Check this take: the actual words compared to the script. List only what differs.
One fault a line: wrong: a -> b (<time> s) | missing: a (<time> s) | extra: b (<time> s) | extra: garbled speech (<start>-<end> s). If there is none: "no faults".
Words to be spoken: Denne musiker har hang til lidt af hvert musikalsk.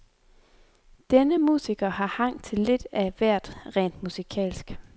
extra: rent (3.8 s)